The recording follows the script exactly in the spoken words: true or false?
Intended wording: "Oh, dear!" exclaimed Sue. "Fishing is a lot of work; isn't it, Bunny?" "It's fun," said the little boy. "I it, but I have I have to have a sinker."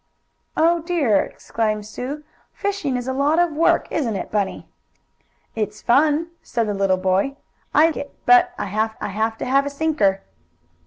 true